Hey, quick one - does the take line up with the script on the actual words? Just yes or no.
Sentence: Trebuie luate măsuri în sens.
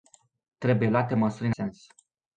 yes